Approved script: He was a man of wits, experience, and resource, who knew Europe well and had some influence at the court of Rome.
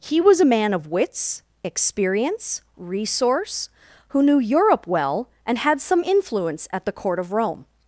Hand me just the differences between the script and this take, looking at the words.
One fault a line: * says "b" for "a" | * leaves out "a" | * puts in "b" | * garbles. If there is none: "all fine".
* leaves out "and"